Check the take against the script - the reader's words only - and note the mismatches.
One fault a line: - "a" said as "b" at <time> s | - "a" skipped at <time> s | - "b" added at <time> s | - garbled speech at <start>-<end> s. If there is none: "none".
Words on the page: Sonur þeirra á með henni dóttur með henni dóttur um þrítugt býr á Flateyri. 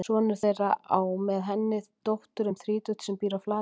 - "með henni dóttur" skipped at 2.5 s
- "sem" added at 3.1 s